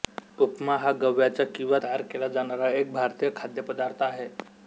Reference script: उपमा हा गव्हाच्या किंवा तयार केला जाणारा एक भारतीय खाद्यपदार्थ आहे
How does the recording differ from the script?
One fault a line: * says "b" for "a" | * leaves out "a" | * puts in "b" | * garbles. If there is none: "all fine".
all fine